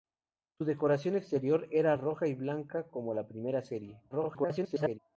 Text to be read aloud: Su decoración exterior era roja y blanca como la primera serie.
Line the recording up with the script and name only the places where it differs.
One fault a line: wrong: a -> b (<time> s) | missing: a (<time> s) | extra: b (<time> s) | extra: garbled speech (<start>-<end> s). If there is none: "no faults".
extra: garbled speech (4.1-5.0 s)